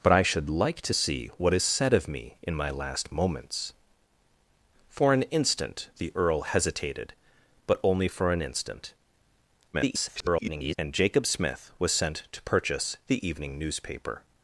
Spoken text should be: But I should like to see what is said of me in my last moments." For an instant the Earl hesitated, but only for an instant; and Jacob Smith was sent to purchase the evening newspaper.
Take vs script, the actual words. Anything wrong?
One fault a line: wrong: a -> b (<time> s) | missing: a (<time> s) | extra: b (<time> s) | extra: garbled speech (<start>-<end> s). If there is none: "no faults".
extra: garbled speech (9.7-10.8 s)